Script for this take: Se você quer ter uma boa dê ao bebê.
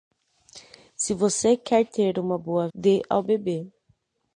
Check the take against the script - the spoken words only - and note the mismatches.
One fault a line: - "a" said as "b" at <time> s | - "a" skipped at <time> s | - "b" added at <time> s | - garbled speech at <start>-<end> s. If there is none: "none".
none